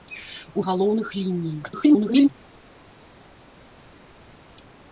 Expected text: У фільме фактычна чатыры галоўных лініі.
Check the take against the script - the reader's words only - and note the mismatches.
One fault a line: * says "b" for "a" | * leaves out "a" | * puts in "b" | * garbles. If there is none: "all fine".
* leaves out "фільме фактычна чатыры"
* garbles